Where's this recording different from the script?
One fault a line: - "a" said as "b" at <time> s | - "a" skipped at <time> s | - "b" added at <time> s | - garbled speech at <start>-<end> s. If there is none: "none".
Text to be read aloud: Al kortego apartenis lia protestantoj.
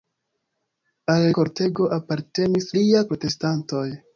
none